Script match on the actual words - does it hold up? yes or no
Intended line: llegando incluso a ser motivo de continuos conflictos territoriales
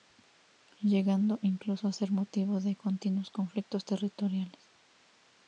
yes